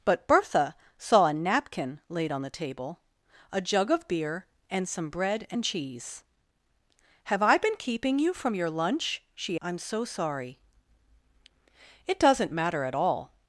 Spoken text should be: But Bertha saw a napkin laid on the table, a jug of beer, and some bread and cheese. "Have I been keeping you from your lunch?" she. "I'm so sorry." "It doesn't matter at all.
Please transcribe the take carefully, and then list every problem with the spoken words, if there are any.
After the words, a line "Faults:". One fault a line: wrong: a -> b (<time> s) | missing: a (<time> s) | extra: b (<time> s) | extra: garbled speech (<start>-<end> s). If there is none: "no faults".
But Bertha saw a napkin laid on the table, a jug of beer, and some bread and cheese. "Have I been keeping you from your lunch?" she. "I'm so sorry." "It doesn't matter at all.
Faults:
no faults